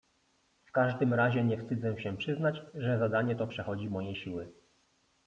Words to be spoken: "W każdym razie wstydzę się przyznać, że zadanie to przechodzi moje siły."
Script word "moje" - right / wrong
right